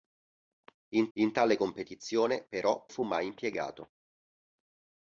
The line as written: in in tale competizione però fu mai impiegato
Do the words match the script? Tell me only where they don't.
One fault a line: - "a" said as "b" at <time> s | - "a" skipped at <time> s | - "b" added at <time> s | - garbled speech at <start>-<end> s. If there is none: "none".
none